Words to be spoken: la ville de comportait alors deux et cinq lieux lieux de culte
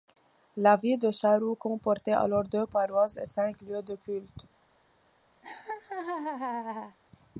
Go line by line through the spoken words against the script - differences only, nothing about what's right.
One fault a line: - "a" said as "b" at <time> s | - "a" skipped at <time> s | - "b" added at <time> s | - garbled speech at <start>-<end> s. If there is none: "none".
- "charroux" added at 1.1 s
- "paroisses" added at 2.6 s
- "lieux" skipped at 3.8 s